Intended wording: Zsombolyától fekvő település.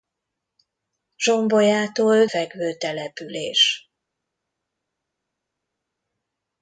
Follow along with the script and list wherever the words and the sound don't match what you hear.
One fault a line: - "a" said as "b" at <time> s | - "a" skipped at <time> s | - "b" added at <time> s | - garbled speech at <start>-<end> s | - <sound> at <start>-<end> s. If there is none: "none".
none